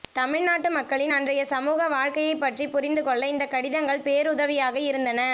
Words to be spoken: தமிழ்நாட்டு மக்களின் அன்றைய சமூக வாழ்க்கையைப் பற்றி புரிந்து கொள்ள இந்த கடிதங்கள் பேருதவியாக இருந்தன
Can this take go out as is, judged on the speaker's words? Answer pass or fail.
pass